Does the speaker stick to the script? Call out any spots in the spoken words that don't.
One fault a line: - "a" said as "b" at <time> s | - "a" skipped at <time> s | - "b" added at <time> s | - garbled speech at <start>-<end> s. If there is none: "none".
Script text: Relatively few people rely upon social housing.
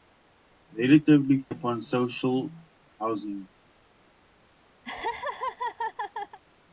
- "few people rely" skipped at 1.4 s